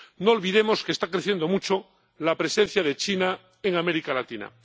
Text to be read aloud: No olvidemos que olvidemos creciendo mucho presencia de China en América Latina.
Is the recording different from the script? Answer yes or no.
yes